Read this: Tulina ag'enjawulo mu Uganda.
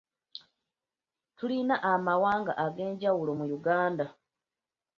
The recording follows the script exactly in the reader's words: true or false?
false